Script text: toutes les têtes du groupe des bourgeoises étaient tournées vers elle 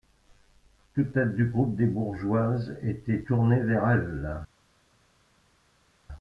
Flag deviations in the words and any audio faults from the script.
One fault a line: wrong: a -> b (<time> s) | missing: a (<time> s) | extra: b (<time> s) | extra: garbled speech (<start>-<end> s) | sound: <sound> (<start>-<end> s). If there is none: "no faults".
missing: les (1.1 s)